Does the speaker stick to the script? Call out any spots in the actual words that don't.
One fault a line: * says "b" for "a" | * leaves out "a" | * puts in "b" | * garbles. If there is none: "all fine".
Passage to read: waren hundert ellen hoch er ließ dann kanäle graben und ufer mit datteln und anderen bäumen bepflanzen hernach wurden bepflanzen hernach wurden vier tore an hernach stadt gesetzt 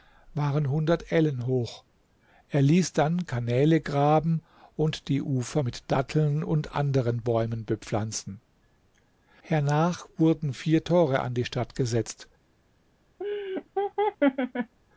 * puts in "die"
* leaves out "bepflanzen hernach wurden"
* says "die" for "hernach"